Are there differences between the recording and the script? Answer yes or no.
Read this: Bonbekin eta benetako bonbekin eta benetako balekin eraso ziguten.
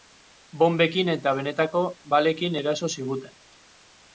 yes